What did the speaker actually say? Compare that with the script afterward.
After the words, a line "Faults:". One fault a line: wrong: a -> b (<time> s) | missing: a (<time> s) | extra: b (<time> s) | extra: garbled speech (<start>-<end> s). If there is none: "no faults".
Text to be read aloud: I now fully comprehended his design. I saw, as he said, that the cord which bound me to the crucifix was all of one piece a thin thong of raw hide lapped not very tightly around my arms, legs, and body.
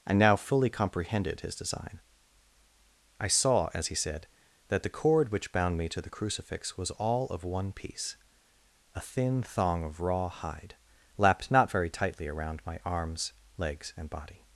I now fully comprehended his design. I saw, as he said, that the cord which bound me to the crucifix was all of one piece a thin thong of raw hide lapped not very tightly around my arms, legs, and body.
Faults:
no faults